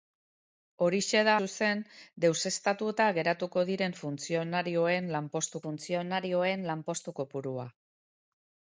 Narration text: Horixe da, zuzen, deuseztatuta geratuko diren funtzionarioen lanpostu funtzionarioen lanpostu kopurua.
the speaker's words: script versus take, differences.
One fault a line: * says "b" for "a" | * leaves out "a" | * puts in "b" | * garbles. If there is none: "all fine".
all fine